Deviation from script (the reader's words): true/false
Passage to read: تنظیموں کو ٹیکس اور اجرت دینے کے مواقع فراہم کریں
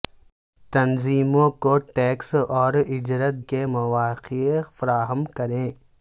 true